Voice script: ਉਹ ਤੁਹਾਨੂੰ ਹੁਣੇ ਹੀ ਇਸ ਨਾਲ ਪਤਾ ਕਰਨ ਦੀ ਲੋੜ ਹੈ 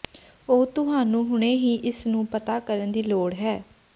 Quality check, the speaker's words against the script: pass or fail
fail